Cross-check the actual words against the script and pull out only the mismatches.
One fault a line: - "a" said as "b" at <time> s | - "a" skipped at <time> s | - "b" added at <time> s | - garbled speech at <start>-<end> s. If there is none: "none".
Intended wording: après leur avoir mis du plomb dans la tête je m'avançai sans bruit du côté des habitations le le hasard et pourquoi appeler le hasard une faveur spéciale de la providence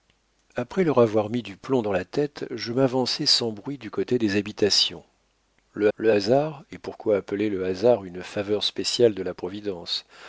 none